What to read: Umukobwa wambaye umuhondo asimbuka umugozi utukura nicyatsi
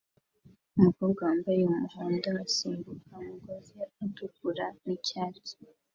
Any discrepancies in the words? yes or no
no